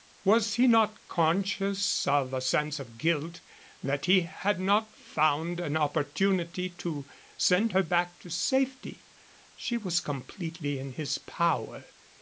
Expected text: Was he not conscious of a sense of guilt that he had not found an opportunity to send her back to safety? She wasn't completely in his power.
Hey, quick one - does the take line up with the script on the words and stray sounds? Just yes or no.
no